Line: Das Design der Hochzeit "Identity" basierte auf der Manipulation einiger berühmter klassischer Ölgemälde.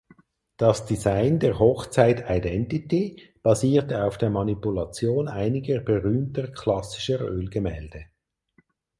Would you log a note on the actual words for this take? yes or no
no